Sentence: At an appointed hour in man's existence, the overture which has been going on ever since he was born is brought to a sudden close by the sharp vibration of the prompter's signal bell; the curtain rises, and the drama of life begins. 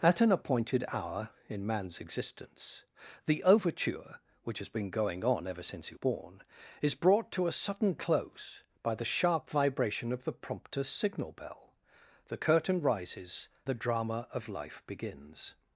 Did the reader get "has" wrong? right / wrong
right